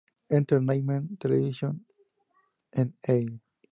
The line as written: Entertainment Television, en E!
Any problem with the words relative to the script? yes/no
no